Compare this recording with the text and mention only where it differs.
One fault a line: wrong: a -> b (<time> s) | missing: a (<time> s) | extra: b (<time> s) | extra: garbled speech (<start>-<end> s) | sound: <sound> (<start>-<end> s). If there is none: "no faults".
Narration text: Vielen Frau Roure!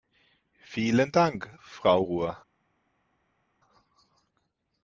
extra: Dank (1.1 s)